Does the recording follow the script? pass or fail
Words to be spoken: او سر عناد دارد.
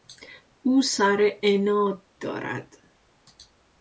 pass